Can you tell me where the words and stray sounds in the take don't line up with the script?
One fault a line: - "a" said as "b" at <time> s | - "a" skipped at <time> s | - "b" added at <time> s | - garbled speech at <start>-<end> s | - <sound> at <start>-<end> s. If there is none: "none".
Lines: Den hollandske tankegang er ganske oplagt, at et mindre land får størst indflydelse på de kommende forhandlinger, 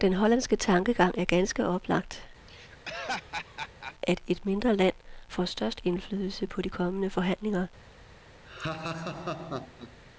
- laugh at 2.5-3.9 s
- laugh at 8.4-10.0 s